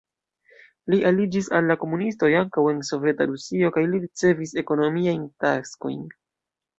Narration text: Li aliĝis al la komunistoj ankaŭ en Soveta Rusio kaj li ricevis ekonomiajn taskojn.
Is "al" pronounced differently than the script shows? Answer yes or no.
no